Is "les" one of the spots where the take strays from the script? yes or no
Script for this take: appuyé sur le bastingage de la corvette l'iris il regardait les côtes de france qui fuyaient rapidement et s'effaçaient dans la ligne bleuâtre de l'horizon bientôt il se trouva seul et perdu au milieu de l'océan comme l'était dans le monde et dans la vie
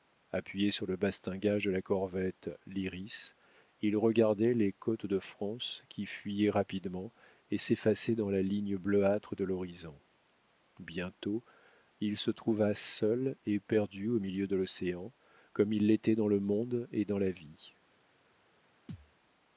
no